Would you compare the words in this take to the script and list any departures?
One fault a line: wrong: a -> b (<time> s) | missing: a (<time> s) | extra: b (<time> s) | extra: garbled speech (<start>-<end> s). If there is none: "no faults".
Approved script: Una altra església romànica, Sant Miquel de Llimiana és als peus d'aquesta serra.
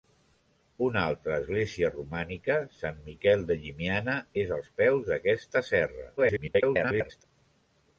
extra: garbled speech (6.2-7.2 s)